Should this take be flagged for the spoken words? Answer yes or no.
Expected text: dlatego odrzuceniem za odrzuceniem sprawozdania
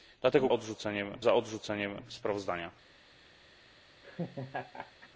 no